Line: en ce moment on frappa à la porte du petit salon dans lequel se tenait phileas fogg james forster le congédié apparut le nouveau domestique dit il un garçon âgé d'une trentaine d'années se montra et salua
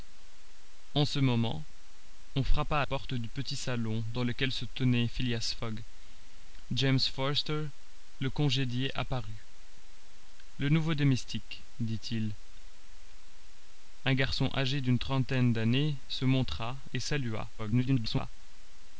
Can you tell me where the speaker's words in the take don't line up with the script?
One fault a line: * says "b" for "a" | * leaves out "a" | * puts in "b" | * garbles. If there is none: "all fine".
* leaves out "la"
* garbles